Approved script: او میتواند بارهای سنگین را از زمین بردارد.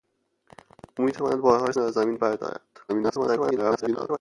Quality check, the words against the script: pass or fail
fail